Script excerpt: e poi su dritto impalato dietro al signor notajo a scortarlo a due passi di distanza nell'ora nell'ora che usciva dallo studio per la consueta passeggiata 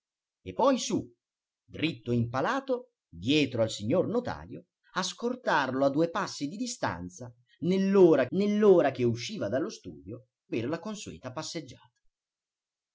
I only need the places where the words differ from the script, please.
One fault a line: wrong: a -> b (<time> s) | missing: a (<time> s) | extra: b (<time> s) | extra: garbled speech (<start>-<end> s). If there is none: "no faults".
no faults